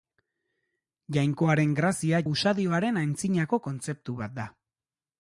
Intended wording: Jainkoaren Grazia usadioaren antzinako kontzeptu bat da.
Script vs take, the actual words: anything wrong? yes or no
no